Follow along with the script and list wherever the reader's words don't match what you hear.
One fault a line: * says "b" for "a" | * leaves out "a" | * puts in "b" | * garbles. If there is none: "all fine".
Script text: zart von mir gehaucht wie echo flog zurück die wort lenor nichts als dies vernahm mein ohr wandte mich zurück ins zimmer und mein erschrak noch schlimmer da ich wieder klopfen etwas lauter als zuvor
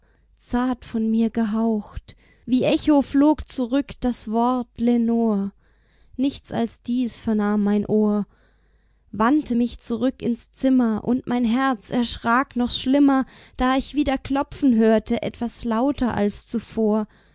* says "das" for "die"
* puts in "herz"
* puts in "hörte"